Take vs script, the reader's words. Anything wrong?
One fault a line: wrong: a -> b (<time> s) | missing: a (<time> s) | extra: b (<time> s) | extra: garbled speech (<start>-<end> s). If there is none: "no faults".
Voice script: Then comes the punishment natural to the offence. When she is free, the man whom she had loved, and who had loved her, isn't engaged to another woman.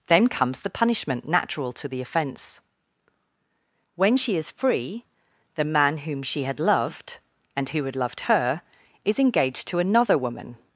wrong: isn't -> is (9.0 s)